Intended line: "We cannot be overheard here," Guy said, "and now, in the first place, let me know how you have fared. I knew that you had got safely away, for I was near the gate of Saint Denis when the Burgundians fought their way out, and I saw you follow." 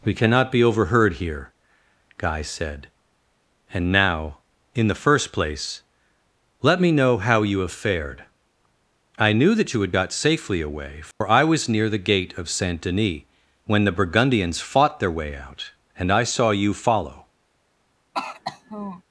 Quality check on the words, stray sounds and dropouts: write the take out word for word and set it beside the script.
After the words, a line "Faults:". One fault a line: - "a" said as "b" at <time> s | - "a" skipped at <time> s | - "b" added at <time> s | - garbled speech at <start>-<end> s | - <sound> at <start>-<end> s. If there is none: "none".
"We cannot be overheard here," Guy said, "and now, in the first place, let me know how you have fared. I knew that you had got safely away, for I was near the gate of Saint Denis when the Burgundians fought their way out, and I saw you follow."
Faults:
- dropout at 11.1-11.2 s
- throat clearing at 18.1-19.0 s